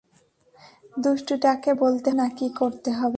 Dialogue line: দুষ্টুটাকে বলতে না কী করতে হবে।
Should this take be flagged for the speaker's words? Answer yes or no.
no